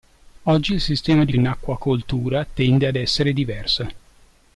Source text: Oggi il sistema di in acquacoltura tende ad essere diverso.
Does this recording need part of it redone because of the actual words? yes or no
no